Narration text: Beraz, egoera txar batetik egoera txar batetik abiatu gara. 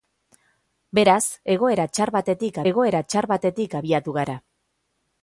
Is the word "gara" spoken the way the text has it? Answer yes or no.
yes